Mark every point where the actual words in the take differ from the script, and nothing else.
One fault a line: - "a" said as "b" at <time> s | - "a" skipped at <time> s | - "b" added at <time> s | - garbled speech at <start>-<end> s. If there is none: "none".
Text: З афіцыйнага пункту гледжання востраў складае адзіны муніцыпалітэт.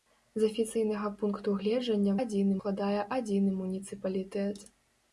- "востраў" said as "адзіны" at 2.2 s